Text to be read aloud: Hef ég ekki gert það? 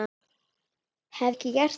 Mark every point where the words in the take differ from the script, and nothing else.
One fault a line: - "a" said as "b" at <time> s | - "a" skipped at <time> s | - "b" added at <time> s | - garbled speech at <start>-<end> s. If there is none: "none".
- "ég" skipped at 1.4 s